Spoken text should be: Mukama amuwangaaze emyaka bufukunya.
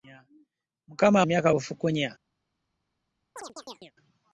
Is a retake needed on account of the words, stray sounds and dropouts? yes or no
yes